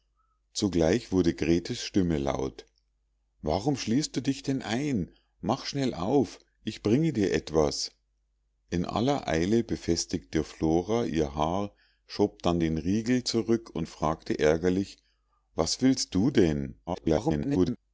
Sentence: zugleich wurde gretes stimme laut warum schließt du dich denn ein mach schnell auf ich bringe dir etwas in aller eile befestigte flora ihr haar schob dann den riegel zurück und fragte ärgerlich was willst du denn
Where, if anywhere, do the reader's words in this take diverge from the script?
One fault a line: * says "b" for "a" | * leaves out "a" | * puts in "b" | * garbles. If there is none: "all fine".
* garbles